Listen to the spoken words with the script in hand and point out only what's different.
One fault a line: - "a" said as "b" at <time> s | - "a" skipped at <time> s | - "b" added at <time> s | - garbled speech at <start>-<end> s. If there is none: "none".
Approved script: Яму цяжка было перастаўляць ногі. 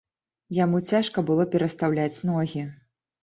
none